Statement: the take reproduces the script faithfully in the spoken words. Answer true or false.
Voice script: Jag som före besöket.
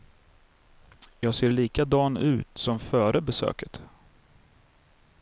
false